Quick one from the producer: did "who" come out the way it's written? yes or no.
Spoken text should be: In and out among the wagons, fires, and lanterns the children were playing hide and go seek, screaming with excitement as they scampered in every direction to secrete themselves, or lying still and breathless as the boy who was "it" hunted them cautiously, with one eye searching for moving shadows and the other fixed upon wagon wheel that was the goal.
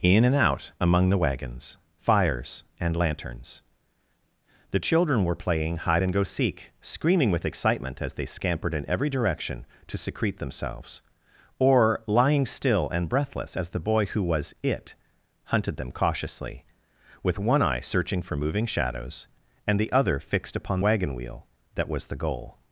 yes